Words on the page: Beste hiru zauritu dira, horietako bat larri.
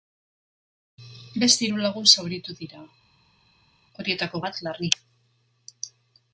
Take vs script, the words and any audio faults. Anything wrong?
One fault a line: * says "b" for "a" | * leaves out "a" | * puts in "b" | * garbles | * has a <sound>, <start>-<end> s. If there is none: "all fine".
* puts in "lagun"